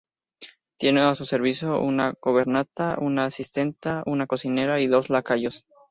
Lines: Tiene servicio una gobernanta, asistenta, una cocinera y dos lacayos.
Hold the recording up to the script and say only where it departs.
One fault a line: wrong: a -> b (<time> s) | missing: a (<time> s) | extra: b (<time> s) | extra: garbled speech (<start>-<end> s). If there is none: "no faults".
extra: a su (1.0 s)
extra: una (3.0 s)